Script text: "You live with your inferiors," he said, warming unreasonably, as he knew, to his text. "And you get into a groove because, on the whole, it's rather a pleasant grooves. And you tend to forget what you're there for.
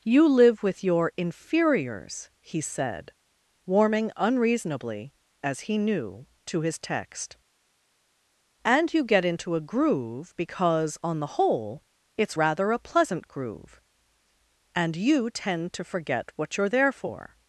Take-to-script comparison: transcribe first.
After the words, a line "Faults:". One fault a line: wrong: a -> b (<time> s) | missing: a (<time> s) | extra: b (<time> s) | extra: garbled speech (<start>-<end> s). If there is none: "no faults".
"You live with your inferiors," he said, warming unreasonably, as he knew, to his text. "And you get into a groove because, on the whole, it's rather a pleasant groove. And you tend to forget what you're there for.
Faults:
wrong: grooves -> groove (13.3 s)